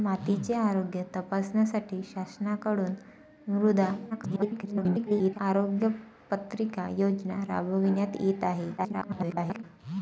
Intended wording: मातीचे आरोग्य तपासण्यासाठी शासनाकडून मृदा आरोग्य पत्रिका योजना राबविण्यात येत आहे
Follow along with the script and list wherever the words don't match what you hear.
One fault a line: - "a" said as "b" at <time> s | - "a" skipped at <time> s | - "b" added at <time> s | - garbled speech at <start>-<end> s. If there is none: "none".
- garbled speech at 4.1-5.4 s
- garbled speech at 8.8-9.6 s